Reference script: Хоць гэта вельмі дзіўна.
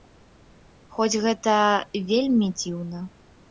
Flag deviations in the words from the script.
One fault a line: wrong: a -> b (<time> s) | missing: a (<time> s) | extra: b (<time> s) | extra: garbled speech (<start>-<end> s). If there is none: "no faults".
no faults